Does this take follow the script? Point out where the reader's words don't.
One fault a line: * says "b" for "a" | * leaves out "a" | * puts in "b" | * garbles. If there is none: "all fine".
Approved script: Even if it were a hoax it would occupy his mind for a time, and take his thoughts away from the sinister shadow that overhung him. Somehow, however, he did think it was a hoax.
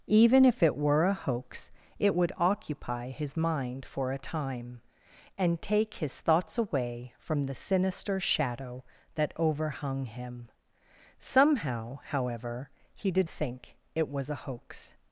all fine